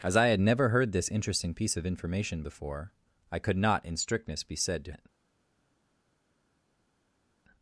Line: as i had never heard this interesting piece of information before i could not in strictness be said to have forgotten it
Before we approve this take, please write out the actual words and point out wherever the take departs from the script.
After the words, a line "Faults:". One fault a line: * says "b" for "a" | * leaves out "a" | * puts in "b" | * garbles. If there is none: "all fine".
as i had never heard this interesting piece of information before i could not in strictness be said to it
Faults:
* leaves out "have forgotten"